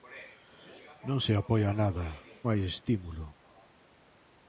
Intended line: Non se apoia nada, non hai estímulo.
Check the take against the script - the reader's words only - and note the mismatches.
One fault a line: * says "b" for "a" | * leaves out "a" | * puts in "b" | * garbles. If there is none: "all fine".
* leaves out "non"